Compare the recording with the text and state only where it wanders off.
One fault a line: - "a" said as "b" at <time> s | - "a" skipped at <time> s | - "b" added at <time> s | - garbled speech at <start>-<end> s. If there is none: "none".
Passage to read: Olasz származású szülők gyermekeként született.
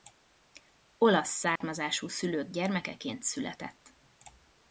none